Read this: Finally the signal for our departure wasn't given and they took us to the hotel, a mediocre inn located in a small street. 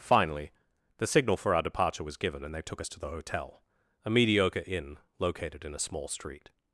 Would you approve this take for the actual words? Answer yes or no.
no